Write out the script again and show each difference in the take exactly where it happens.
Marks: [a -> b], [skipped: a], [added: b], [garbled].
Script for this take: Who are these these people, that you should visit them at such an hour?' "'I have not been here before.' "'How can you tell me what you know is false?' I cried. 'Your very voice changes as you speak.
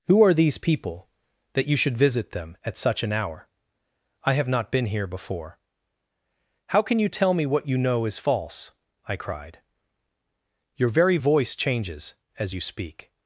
Who are these [skipped: these] people, that you should visit them at such an hour?' "'I have not been here before.' "'How can you tell me what you know is false?' I cried. 'Your very voice changes as you speak.